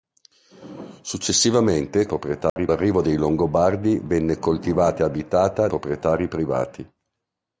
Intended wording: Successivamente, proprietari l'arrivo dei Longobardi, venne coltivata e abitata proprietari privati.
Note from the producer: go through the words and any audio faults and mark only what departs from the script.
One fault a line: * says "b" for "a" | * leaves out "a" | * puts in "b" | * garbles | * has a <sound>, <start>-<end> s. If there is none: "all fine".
* has a dropout, 2.5-2.6 s